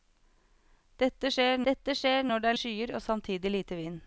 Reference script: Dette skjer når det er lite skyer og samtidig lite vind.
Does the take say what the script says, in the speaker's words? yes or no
no